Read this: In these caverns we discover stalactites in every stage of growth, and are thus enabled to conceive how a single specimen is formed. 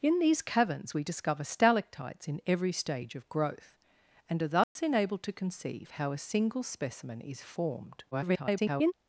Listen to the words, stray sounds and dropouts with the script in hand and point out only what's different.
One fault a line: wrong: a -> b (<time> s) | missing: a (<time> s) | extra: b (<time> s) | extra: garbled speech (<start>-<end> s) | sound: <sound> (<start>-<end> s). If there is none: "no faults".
sound: dropout (4.6-4.8 s)
extra: garbled speech (8.1-8.9 s)